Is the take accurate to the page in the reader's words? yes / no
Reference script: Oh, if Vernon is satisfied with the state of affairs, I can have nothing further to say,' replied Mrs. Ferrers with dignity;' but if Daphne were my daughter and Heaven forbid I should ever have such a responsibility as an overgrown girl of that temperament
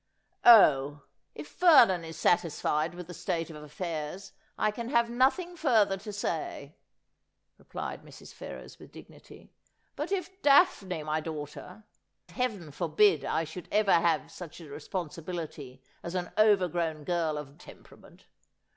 no